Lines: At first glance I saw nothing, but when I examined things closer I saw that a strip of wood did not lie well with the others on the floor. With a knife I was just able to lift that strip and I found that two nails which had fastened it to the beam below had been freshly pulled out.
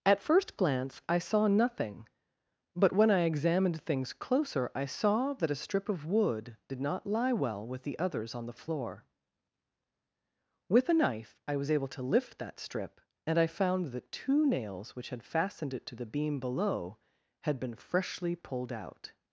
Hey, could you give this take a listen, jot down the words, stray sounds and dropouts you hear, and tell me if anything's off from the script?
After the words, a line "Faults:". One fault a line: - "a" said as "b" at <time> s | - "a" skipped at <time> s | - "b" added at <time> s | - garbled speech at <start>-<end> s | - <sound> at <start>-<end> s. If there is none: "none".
At first glance I saw nothing, but when I examined things closer I saw that a strip of wood did not lie well with the others on the floor. With a knife I was able to lift that strip and I found that two nails which had fastened it to the beam below had been freshly pulled out.
Faults:
- "just" skipped at 11.7 s